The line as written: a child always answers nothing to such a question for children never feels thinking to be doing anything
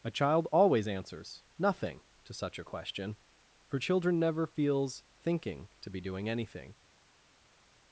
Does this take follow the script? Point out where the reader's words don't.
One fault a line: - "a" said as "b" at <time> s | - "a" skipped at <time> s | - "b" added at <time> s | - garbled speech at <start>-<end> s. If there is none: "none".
none